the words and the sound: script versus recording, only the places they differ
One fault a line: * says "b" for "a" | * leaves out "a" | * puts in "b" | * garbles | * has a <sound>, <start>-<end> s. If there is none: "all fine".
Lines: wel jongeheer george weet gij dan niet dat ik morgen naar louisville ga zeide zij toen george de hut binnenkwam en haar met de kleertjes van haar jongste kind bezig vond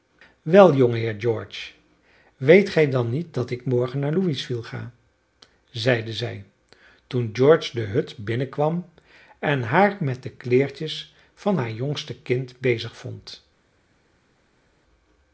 all fine